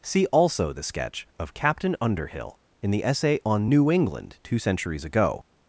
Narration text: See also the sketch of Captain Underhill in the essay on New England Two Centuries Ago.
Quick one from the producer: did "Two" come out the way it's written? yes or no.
yes